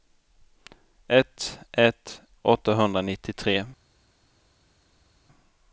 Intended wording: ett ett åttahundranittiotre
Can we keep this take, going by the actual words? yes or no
yes